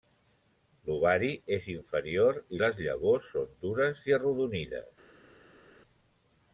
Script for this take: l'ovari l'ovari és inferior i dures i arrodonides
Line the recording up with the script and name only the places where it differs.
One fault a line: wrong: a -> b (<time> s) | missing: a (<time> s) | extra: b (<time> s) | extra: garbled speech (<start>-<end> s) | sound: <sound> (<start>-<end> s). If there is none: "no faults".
missing: l'ovari (1.3 s)
extra: les llavors són (2.6 s)